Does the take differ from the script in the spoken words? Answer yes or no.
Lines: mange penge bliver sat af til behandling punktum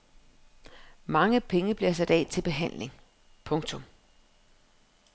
no